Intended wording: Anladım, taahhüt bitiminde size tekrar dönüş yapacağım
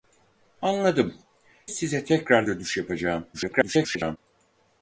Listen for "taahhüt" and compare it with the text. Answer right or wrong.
wrong